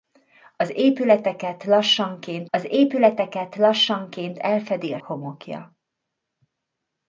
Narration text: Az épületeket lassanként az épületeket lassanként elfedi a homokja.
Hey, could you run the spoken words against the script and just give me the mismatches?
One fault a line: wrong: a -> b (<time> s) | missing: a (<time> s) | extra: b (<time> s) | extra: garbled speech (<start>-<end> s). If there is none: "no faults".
no faults